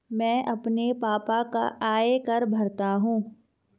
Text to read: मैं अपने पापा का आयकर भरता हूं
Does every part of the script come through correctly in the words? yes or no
yes